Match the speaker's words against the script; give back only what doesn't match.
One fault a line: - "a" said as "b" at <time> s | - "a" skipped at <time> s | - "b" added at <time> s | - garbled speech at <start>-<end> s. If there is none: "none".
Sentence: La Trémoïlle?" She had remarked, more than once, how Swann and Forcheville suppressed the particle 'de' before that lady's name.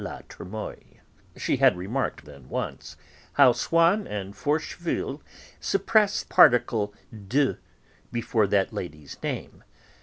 - "more" skipped at 2.2 s
- "the" skipped at 6.3 s